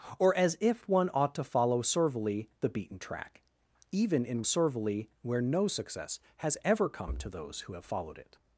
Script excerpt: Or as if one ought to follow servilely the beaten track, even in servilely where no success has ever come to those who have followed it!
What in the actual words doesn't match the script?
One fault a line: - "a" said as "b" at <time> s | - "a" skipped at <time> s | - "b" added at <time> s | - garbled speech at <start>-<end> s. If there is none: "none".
none